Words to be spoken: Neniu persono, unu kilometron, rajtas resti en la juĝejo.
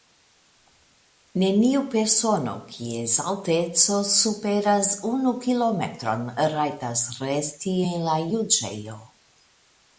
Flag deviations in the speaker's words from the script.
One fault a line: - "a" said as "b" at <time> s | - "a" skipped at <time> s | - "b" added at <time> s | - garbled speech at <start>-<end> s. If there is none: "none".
- "kies alteco superas" added at 2.7 s